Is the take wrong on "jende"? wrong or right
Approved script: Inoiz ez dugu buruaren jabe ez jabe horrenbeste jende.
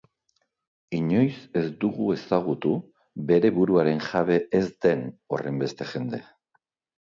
right